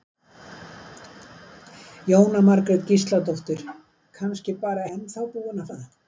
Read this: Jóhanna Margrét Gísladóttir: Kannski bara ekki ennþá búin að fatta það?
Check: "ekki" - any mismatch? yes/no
yes